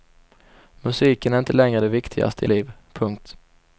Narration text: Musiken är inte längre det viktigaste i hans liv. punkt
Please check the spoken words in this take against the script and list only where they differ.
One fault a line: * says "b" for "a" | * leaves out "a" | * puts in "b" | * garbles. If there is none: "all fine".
* leaves out "hans"